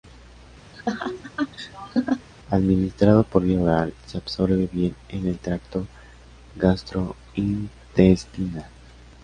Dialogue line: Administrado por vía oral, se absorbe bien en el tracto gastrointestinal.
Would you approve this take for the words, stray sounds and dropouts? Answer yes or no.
no